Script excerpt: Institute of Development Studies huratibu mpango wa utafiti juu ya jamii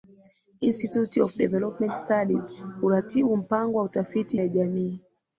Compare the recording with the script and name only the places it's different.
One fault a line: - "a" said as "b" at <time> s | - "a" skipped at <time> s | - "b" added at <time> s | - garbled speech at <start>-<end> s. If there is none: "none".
- "juu" skipped at 4.4 s